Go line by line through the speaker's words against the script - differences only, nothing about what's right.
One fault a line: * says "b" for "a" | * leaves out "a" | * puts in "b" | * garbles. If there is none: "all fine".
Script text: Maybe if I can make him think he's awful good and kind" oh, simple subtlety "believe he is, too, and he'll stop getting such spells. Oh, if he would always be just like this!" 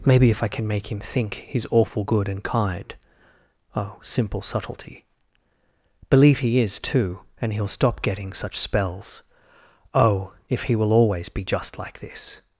* says "will" for "would"